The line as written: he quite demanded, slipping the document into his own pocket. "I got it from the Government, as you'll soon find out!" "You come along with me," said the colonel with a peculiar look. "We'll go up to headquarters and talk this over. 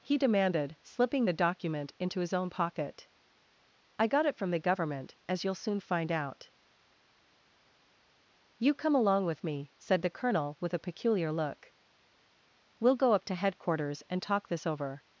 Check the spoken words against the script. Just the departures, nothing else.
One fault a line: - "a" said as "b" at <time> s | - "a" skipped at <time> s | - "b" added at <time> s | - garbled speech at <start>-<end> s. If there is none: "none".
- "quite" skipped at 0.2 s